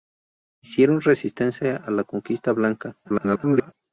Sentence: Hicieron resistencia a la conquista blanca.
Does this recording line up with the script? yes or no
no